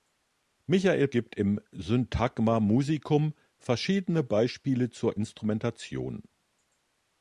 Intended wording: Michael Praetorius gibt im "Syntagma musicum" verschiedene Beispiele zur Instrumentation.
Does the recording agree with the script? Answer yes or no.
no